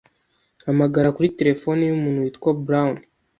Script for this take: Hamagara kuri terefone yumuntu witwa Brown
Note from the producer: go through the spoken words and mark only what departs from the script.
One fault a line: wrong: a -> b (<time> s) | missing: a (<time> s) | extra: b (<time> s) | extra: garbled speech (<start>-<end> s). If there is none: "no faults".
no faults